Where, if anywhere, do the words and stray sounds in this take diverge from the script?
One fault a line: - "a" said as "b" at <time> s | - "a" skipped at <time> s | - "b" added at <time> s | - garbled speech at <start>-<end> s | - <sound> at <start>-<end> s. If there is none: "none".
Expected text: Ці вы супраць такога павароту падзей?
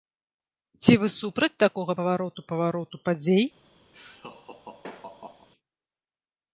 - "павароту" added at 2.5 s
- laugh at 3.9-5.5 s